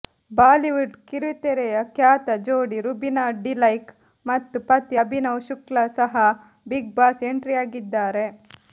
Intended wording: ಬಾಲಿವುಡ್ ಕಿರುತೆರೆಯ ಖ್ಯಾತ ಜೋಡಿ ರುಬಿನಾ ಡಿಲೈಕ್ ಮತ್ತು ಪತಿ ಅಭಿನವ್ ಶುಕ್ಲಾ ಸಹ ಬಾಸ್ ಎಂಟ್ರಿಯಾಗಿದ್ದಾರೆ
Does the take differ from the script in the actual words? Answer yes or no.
yes